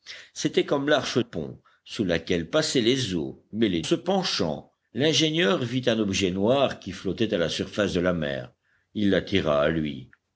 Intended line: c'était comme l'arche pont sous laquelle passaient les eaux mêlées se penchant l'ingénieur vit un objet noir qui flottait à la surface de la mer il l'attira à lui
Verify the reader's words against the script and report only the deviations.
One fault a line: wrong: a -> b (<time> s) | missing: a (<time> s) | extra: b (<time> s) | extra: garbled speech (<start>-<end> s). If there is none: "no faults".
no faults